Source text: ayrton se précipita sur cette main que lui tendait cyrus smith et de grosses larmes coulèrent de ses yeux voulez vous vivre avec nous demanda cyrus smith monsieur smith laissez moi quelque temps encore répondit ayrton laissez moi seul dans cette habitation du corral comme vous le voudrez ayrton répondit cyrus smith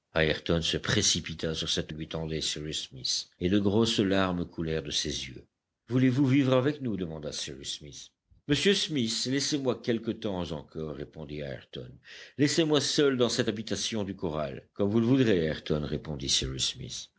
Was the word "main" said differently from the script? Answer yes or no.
yes